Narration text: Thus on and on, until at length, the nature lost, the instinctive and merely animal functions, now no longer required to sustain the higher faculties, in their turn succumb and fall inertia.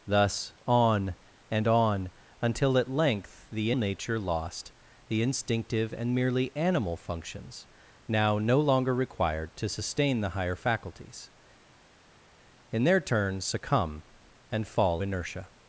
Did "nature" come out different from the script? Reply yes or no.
no